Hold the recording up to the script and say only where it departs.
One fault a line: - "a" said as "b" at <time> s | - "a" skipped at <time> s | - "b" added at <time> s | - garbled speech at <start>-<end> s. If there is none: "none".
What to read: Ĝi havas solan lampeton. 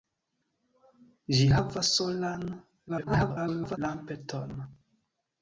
- garbled speech at 2.9-3.8 s